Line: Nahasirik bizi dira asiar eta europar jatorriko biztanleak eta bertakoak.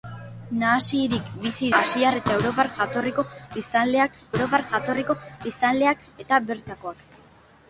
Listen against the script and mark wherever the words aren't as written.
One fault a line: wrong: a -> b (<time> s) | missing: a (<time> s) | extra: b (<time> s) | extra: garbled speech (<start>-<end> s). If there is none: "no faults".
missing: dira (1.7 s)
extra: europar jatorriko biztanleak (4.3 s)